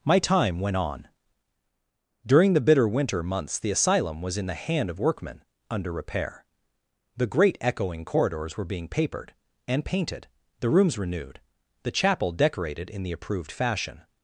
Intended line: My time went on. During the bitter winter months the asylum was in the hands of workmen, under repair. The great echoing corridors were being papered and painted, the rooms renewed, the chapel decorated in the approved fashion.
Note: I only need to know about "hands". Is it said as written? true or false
false